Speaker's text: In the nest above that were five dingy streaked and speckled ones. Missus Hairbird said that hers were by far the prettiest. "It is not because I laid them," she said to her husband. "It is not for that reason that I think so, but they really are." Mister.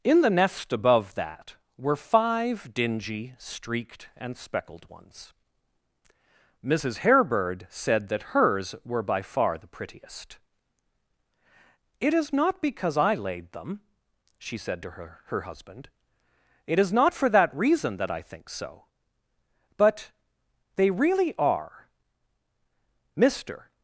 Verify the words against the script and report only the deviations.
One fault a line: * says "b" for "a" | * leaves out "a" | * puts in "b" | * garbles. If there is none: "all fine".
* puts in "her"